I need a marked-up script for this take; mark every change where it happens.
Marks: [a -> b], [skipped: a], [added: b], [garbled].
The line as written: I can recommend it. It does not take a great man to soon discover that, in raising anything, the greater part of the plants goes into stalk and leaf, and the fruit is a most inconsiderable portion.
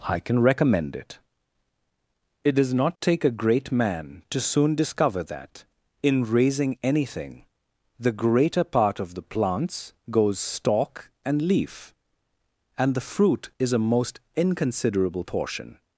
I can recommend it. It does not take a great man to soon discover that, in raising anything, the greater part of the plants goes [skipped: into] stalk and leaf, and the fruit is a most inconsiderable portion.